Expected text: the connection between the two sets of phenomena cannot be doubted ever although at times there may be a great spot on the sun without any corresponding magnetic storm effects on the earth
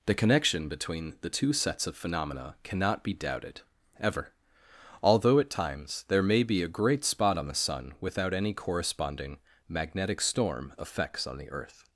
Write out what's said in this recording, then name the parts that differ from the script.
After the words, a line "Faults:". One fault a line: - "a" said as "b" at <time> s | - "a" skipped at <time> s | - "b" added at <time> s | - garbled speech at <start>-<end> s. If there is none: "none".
the connection between the two sets of phenomena cannot be doubted ever although at times there may be a great spot on the sun without any corresponding magnetic storm effects on the earth
Faults:
none